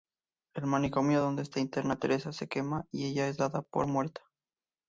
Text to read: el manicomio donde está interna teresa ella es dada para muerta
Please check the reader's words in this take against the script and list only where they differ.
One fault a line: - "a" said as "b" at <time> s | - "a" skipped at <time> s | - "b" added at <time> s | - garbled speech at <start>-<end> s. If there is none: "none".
- "se quema y" added at 2.3 s
- "para" said as "por" at 3.6 s